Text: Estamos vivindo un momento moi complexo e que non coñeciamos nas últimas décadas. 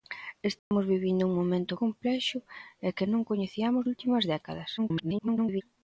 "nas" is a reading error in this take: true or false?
true